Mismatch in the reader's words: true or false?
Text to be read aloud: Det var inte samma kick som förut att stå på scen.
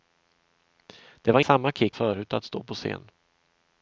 true